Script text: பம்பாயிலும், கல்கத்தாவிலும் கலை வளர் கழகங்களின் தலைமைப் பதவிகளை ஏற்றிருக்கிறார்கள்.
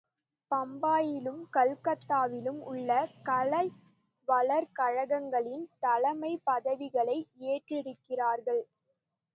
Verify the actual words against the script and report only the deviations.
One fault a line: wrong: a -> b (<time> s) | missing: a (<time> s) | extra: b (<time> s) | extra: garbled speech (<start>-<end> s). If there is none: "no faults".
extra: உள்ள (2.6 s)